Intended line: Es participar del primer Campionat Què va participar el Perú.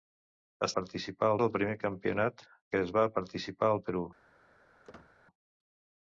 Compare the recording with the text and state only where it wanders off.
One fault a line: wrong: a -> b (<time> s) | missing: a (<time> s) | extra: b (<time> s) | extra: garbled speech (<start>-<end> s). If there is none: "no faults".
no faults